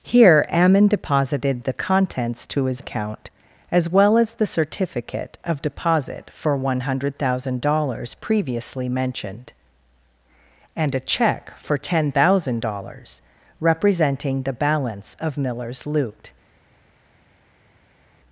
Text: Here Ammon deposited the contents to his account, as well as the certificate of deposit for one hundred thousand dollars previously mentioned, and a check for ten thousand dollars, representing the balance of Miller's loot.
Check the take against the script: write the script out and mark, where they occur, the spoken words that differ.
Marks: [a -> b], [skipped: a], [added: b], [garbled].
Here Ammon deposited the contents to his account, as well as the certificate of deposit for one hundred thousand dollars previously mentioned, and a check for ten thousand dollars, representing the balance of Miller's loot.